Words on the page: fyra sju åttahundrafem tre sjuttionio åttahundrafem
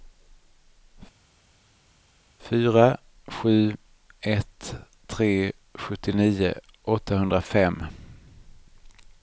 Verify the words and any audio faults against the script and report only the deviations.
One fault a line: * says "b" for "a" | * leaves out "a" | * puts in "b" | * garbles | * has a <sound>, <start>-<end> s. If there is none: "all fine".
* says "ett" for "åttahundrafem"